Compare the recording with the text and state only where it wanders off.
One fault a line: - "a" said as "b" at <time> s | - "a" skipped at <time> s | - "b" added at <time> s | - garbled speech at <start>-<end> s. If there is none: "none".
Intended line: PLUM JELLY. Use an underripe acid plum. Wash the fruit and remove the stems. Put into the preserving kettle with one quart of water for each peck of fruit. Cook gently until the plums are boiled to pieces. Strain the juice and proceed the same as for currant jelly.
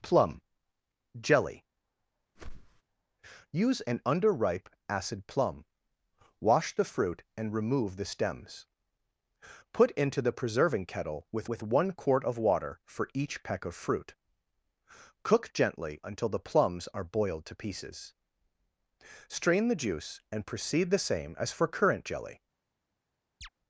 - "with" added at 11.5 s